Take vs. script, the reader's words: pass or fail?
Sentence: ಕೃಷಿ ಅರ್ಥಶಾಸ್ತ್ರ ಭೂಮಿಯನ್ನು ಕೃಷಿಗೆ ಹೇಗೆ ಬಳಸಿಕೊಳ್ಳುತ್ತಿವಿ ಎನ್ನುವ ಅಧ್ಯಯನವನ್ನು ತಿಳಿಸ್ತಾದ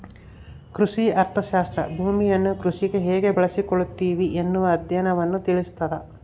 pass